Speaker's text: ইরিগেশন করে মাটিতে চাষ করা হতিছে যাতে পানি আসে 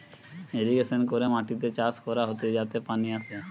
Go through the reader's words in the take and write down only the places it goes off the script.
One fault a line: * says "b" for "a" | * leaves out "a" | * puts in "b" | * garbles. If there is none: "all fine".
all fine